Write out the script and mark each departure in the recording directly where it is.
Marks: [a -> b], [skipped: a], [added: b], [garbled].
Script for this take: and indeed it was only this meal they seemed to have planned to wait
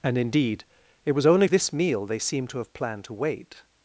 and indeed it was only this meal they seemed to have planned to wait